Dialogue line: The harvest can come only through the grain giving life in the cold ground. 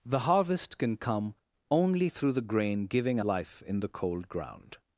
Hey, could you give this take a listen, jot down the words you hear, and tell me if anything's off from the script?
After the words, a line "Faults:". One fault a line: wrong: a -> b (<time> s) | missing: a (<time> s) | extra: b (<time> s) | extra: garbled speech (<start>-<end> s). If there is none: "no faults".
The harvest can come only through the grain giving life in the cold ground.
Faults:
no faults